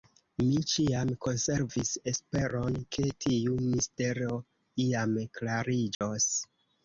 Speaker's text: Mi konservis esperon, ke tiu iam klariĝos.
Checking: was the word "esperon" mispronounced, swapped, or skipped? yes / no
no